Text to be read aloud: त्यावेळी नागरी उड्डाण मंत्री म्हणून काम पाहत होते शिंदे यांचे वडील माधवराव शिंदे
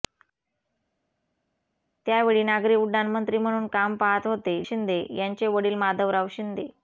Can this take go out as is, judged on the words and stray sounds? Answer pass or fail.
pass